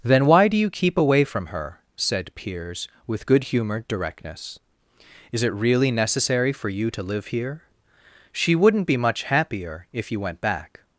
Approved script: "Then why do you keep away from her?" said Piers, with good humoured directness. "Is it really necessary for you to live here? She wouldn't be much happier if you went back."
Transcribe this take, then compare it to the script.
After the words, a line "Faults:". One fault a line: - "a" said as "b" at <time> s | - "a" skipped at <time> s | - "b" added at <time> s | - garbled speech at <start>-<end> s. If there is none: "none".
"Then why do you keep away from her?" said Piers, with good humoured directness. "Is it really necessary for you to live here? She wouldn't be much happier if you went back."
Faults:
none